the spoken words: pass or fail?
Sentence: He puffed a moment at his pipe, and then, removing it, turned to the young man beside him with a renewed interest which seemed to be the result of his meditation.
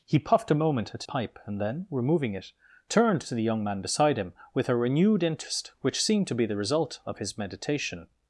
fail